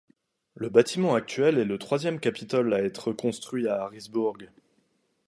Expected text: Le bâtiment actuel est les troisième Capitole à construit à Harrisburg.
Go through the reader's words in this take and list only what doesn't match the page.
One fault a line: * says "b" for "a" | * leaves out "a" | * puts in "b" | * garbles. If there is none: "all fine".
* says "le" for "les"
* puts in "être"